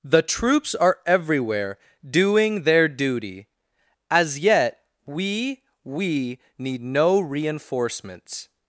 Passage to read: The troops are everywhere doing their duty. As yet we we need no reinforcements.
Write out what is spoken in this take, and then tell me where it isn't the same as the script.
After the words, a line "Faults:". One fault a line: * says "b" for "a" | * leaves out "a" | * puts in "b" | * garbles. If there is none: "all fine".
The troops are everywhere doing their duty. As yet we we need no reinforcements.
Faults:
all fine